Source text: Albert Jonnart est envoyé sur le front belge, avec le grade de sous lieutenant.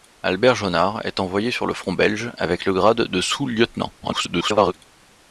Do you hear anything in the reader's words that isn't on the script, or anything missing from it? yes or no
yes